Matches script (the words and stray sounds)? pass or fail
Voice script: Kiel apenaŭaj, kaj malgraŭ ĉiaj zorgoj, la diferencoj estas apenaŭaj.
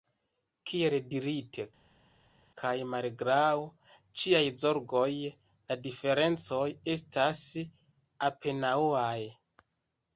fail